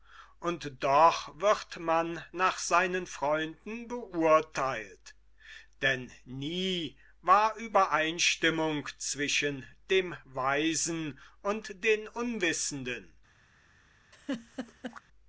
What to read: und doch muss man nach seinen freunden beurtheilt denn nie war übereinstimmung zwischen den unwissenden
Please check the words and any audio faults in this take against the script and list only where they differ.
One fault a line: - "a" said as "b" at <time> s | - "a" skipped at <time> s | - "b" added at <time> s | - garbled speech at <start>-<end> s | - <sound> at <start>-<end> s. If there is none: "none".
- "muss" said as "wird" at 1.4 s
- "dem weisen und" added at 9.9 s
- laugh at 14.1-15.0 s